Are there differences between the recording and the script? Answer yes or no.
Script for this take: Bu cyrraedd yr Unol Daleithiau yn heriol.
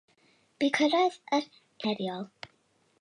yes